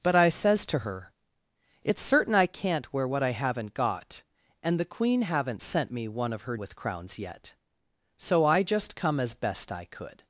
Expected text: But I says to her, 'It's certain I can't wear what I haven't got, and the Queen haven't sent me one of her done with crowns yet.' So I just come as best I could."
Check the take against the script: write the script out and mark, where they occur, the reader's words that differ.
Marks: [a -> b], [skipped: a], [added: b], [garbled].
But I says to her, 'It's certain I can't wear what I haven't got, and the Queen haven't sent me one of her [skipped: done] with crowns yet.' So I just come as best I could."